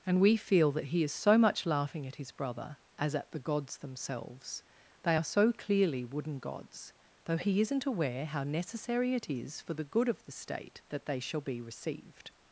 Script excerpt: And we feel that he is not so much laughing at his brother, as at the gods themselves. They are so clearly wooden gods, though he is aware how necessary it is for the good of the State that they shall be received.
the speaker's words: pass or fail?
fail